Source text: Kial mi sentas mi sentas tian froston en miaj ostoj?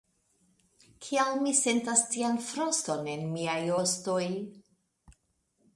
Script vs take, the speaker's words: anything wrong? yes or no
yes